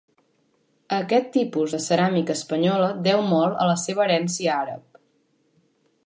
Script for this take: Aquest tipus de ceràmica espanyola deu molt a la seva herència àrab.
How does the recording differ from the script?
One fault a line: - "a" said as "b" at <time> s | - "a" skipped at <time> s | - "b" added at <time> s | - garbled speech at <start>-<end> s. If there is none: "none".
none